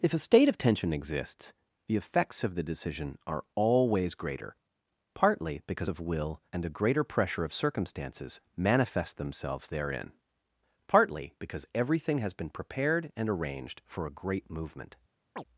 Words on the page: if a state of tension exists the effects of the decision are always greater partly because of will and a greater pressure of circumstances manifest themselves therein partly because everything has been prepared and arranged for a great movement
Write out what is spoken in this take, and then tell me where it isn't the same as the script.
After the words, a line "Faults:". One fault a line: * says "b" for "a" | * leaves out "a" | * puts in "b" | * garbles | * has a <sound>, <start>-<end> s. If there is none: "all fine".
if a state of tension exists the effects of the decision are always greater partly because of will and a greater pressure of circumstances manifest themselves therein partly because everything has been prepared and arranged for a great movement
Faults:
* has a chirp, 15.4-15.4 s